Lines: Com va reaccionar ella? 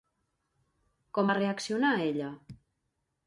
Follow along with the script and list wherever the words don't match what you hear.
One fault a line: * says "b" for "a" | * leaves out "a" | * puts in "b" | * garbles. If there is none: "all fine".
all fine